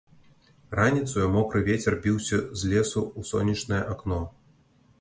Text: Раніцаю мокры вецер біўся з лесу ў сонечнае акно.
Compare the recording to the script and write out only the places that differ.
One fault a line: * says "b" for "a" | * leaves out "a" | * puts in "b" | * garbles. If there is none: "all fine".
all fine